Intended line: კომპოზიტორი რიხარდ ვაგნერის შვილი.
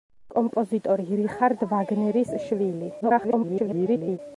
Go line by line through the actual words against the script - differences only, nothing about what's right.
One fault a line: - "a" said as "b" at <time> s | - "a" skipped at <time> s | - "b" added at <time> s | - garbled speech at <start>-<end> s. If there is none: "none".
- garbled speech at 3.0-4.2 s